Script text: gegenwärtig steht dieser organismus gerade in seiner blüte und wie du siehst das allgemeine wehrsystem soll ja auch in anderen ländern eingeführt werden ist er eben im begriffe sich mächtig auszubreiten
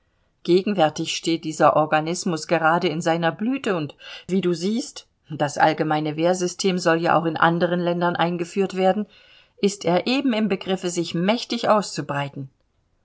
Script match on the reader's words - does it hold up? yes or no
yes